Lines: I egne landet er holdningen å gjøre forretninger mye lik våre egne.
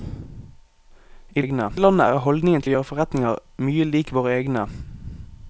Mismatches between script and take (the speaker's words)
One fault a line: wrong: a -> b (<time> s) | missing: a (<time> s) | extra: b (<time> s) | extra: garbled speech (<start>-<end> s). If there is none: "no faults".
no faults